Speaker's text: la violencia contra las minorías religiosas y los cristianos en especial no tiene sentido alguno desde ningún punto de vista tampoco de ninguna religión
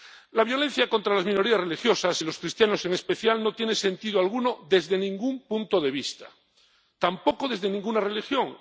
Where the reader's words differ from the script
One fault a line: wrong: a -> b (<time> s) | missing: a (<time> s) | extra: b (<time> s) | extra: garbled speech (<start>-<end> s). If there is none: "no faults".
wrong: de -> desde (7.5 s)